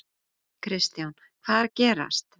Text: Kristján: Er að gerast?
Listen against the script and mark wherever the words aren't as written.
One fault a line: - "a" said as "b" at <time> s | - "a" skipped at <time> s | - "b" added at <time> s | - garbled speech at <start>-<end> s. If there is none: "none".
- "Hvað" added at 1.4 s